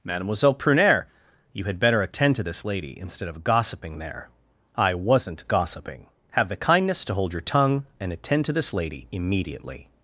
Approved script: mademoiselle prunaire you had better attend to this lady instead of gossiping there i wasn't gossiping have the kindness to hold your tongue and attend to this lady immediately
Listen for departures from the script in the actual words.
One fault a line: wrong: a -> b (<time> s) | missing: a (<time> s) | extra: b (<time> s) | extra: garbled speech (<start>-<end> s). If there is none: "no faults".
no faults